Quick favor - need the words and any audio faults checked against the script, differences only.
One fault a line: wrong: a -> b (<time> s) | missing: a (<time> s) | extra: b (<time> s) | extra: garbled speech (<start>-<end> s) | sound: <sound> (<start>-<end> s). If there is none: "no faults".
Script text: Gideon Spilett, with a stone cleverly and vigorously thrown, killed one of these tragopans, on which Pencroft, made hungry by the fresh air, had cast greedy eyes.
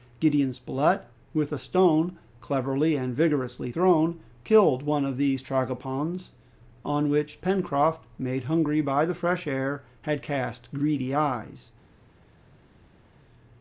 no faults